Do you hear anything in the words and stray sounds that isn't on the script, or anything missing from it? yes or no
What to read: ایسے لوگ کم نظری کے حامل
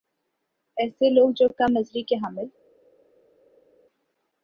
yes